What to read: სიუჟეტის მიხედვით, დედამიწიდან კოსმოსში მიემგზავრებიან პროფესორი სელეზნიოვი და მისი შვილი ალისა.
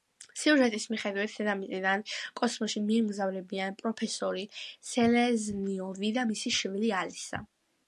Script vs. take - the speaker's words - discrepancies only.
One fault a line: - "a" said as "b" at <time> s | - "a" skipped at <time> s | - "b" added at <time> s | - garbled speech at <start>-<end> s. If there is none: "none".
none